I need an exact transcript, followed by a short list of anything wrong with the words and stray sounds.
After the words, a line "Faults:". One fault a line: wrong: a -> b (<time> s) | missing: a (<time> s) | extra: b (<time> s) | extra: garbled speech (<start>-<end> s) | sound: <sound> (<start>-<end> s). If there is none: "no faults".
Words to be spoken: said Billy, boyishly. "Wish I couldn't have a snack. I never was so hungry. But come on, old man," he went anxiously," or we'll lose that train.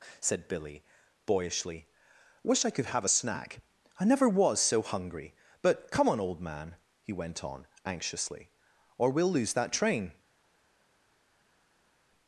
said Billy, boyishly. "Wish I could have a snack. I never was so hungry. But come on, old man," he went on, anxiously," or we'll lose that train.
Faults:
wrong: couldn't -> could (2.7 s)
extra: on (7.4 s)